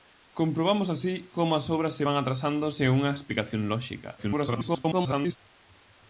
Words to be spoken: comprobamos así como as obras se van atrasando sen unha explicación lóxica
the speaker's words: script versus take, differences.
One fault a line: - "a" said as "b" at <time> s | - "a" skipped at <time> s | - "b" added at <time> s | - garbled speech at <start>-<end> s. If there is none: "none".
- garbled speech at 4.2-5.4 s